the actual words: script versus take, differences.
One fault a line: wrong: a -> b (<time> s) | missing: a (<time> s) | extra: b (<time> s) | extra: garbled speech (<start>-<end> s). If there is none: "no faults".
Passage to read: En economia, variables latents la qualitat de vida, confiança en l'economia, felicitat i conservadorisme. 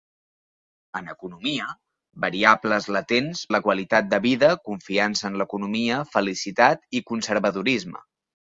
no faults